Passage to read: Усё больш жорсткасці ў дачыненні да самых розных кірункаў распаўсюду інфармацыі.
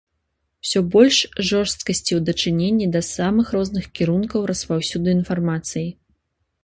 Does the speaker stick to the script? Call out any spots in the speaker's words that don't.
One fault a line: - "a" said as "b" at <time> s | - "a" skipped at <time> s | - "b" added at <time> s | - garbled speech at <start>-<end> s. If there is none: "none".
none